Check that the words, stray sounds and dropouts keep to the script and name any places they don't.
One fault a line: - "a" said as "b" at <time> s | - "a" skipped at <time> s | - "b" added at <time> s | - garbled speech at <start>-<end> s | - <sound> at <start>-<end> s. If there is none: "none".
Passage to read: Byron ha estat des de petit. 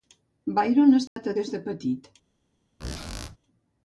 - dropout at 1.1-1.2 s
- squeak at 2.8-3.4 s